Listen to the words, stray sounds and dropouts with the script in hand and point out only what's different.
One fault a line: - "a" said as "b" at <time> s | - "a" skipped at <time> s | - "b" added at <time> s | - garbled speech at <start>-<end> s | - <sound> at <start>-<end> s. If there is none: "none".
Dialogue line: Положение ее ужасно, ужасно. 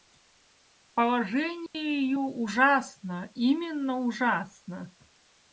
- dropout at 1.7-1.7 s
- "именно" added at 3.3 s